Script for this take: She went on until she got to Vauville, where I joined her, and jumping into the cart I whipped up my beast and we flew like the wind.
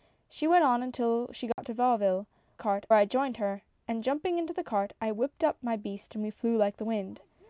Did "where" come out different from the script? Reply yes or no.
yes